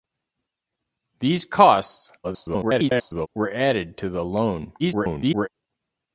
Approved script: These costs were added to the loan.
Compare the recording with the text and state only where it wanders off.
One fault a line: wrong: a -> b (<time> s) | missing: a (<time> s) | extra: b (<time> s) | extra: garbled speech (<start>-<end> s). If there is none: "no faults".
extra: garbled speech (2.2-3.3 s)
extra: garbled speech (4.8-5.5 s)